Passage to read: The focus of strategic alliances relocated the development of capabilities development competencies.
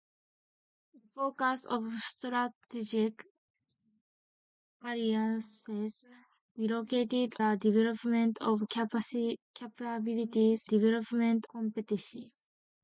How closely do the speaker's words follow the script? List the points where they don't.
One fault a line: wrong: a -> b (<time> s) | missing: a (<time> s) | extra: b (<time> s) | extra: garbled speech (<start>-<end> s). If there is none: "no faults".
no faults